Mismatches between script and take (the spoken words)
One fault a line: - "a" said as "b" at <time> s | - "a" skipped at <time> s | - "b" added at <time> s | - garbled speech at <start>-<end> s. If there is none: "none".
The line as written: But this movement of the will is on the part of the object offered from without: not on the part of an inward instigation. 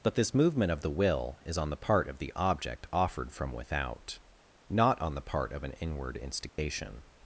none